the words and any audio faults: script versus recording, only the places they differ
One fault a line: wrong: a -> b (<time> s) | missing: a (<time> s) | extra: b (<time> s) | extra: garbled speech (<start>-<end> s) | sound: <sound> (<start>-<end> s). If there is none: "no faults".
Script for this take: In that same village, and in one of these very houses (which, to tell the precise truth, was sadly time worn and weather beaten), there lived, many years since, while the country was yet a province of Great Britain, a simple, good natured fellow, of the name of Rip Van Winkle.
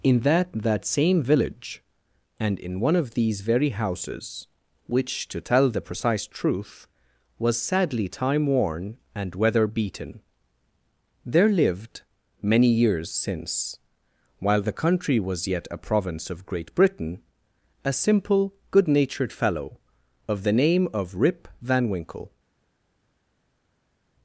extra: that (0.5 s)